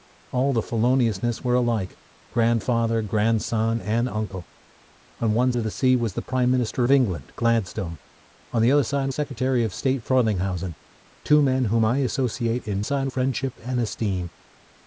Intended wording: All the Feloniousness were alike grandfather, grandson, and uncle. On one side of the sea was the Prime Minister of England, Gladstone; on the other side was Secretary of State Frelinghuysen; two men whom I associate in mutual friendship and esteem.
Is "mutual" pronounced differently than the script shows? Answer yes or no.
yes